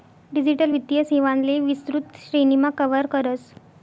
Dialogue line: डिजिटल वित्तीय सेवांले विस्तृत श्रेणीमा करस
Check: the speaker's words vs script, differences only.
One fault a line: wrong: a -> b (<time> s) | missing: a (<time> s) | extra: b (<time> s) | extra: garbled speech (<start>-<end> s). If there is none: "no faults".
extra: कव्हर (2.8 s)